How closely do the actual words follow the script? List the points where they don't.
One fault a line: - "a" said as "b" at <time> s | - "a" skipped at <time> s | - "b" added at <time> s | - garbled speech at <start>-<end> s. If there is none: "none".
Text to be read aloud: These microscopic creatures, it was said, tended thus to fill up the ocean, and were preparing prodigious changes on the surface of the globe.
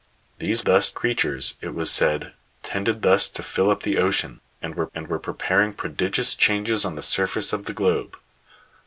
- "microscopic" said as "thus" at 0.6 s
- "and were" added at 4.9 s